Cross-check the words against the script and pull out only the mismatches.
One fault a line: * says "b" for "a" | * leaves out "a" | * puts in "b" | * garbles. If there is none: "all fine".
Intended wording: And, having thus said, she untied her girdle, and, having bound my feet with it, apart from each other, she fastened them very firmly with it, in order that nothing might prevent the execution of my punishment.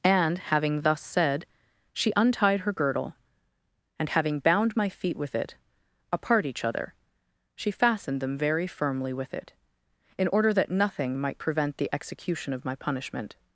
* leaves out "from"